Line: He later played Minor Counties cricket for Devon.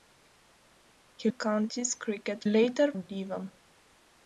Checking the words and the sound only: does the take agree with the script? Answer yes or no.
no